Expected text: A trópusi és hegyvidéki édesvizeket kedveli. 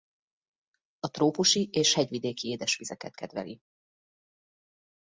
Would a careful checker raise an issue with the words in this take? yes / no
no